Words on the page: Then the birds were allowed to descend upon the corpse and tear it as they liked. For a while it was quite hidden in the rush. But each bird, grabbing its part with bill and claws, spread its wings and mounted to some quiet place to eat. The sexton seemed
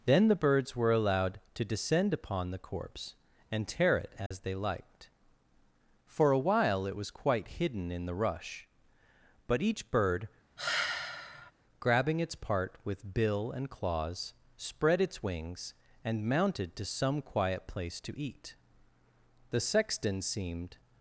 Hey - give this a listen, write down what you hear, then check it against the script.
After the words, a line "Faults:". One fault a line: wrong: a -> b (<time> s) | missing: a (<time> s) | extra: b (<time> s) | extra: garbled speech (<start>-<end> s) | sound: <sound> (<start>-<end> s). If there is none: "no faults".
Then the birds were allowed to descend upon the corpse and tear it as they liked. For a while it was quite hidden in the rush. But each bird, grabbing its part with bill and claws, spread its wings and mounted to some quiet place to eat. The sexton seemed
Faults:
sound: dropout (4.3-4.3 s)
sound: sigh (10.6-11.5 s)